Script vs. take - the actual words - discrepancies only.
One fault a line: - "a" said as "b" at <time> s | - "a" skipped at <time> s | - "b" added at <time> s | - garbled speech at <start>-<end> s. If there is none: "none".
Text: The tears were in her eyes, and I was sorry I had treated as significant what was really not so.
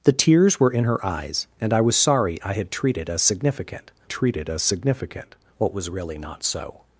- "treated as significant" added at 4.1 s